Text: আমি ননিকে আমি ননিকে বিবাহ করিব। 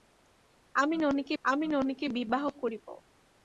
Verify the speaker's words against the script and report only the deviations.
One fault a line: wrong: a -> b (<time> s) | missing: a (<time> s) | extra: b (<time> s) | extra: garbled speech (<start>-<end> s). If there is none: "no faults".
no faults